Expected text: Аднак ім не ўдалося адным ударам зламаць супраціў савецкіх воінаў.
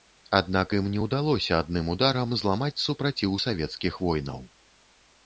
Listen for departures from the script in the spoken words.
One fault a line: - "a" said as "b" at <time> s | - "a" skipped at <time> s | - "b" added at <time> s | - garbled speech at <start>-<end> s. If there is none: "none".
none